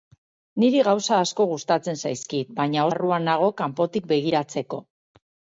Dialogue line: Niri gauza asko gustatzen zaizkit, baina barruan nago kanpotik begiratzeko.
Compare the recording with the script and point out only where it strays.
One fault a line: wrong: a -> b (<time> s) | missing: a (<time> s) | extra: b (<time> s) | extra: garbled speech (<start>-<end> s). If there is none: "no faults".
no faults